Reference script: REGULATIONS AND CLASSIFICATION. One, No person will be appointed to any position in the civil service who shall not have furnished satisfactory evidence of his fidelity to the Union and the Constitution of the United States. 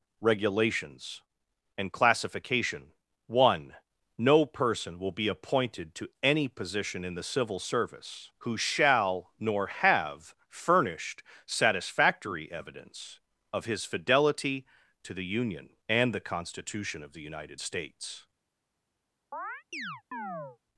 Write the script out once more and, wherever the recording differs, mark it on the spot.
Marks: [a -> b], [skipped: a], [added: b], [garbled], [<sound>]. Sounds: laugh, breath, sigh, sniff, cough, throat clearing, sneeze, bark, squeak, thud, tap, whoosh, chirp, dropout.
REGULATIONS AND CLASSIFICATION. One, No person will be appointed to any position in the civil service who shall [not -> nor] have furnished satisfactory evidence of his fidelity to the Union and the Constitution of the United States. [chirp]